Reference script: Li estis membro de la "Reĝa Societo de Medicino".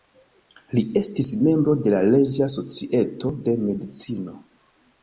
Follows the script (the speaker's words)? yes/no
yes